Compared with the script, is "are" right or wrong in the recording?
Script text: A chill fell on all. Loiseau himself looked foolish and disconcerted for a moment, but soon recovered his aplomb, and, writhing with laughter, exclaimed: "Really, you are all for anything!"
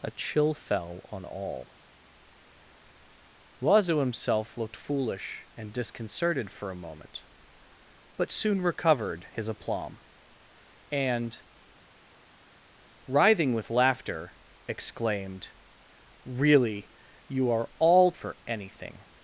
right